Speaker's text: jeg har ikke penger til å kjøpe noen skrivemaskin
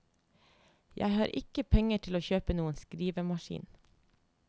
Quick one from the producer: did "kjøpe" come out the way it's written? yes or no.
yes